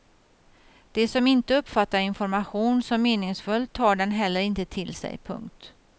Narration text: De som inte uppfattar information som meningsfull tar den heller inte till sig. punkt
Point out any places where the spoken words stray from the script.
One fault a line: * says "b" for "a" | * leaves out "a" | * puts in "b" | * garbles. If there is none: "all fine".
all fine